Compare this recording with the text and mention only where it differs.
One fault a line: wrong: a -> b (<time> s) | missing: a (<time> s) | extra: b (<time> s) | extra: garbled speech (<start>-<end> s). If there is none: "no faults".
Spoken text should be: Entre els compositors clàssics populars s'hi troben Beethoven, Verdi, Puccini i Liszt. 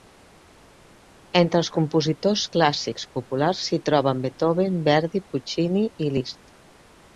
no faults